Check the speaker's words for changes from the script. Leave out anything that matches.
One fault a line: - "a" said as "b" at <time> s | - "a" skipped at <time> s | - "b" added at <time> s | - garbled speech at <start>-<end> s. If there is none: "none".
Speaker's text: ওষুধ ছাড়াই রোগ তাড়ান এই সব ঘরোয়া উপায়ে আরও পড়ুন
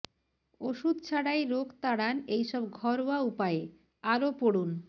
none